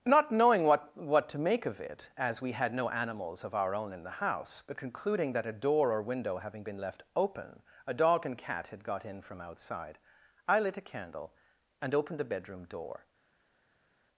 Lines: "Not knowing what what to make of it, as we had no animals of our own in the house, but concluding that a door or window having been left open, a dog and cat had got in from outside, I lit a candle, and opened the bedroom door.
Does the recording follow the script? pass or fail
pass